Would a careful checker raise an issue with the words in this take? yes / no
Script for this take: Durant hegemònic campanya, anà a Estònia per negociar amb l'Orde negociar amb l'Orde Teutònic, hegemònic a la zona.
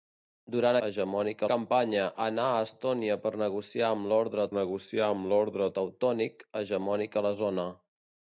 no